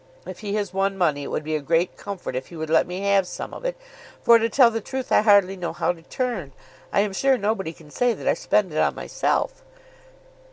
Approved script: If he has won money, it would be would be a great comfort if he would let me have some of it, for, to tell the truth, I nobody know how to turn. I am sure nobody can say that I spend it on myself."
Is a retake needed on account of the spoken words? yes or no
yes